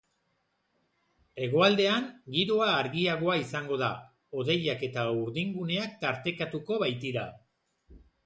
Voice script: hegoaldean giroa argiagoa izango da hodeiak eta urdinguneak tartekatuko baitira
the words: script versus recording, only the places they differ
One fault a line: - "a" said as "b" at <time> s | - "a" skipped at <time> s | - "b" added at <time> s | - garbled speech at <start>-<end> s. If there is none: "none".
none